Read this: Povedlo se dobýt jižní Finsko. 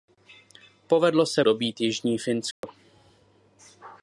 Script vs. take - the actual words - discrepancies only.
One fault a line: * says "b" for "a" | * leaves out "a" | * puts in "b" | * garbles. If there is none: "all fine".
all fine